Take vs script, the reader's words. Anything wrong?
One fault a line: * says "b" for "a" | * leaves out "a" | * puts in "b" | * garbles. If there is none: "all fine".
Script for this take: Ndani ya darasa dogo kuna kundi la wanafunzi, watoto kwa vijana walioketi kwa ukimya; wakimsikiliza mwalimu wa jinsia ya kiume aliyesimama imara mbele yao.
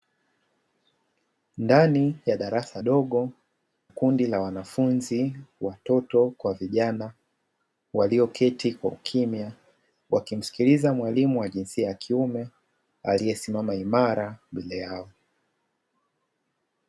* leaves out "kuna"